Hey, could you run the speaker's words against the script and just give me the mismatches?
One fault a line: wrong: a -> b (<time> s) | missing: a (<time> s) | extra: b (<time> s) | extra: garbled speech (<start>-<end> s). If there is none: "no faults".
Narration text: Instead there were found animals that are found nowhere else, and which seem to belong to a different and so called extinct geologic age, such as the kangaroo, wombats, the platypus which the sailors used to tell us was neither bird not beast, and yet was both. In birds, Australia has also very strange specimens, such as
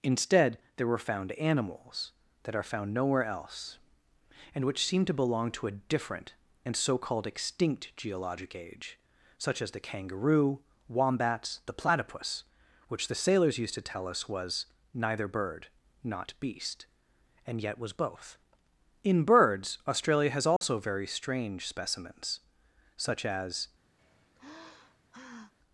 no faults